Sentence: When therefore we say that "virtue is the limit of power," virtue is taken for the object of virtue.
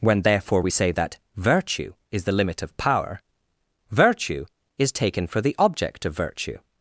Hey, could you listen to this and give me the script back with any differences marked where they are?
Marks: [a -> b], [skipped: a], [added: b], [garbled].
When therefore we say that "virtue is the limit of power," virtue is taken for the object of virtue.